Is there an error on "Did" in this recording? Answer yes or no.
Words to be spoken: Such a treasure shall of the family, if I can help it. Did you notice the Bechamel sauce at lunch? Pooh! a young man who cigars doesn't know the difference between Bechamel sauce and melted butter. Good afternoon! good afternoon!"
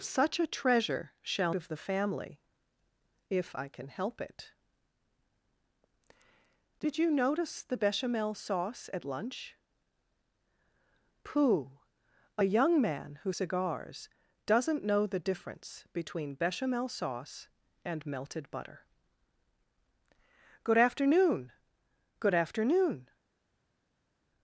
no